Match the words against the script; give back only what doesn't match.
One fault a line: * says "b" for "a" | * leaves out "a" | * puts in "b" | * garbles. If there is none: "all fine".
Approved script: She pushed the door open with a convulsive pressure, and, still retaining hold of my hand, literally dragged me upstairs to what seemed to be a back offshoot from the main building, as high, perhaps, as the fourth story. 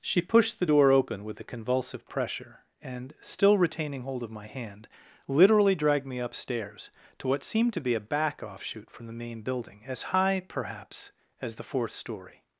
all fine